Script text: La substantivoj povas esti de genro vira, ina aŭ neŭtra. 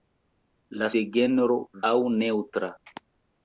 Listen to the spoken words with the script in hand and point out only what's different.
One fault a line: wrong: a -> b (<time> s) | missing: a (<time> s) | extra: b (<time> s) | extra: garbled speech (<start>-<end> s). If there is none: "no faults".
missing: substantivoj povas esti (0.9 s)
missing: vira ina (1.6 s)